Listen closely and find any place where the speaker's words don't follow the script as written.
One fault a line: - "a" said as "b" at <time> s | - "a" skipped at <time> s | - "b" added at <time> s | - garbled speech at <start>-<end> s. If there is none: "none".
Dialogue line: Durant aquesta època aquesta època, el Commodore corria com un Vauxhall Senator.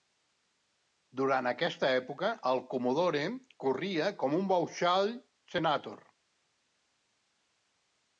- "aquesta època" skipped at 2.3 s